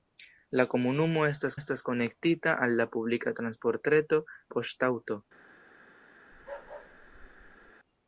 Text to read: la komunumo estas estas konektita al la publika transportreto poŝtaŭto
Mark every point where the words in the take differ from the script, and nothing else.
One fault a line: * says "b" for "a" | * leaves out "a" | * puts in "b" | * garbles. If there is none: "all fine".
all fine